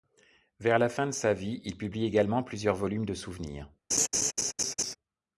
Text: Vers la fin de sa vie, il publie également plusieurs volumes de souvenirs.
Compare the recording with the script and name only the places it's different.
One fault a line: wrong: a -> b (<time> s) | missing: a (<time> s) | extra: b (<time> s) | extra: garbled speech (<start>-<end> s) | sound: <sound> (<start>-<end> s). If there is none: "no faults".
sound: laugh (3.9-5.0 s)